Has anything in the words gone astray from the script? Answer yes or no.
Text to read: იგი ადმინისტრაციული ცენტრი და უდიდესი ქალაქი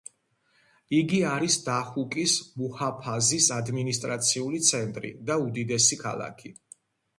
yes